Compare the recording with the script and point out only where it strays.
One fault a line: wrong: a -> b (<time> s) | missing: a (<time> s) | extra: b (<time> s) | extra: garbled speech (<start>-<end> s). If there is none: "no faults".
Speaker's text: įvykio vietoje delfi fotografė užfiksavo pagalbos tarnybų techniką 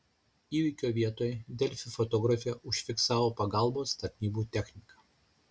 no faults